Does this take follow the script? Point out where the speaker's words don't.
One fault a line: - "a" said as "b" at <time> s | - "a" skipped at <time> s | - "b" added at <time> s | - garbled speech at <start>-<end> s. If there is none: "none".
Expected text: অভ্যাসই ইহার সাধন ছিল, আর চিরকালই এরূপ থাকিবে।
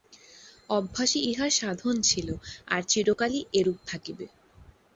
none